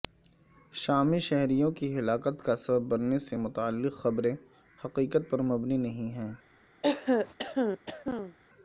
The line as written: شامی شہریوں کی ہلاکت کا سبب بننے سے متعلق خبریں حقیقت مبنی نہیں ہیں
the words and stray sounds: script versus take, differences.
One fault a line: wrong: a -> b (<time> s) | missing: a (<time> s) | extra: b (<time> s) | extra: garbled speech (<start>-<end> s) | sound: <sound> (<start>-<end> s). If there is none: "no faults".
extra: پر (5.3 s)
sound: throat clearing (6.8-8.4 s)